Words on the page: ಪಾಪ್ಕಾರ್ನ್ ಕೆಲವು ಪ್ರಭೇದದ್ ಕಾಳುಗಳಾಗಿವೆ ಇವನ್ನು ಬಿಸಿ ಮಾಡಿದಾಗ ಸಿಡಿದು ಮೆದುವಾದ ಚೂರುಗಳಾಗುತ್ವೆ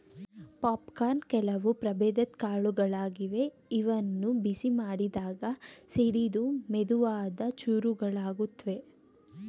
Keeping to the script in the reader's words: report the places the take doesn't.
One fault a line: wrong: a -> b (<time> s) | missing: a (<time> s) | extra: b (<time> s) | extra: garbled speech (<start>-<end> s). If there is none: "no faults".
no faults